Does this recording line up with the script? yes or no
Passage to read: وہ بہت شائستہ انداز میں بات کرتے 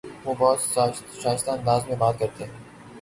yes